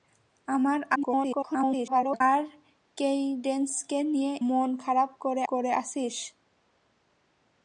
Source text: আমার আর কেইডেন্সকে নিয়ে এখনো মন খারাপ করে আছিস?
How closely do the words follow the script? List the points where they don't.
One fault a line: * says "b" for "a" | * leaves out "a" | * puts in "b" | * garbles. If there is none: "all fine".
* garbles
* leaves out "এখনো"
* puts in "করে"